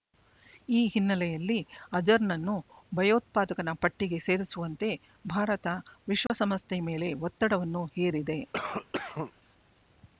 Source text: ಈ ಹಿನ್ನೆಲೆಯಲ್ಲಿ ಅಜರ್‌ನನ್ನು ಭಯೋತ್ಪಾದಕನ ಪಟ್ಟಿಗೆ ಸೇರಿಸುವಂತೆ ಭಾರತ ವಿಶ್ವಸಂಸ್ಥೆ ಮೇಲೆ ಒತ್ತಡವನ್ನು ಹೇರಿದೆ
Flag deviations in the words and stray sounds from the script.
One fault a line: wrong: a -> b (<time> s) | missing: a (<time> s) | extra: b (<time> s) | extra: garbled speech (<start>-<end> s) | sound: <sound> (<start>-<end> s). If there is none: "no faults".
sound: dropout (6.3-6.3 s)
sound: cough (8.5-9.3 s)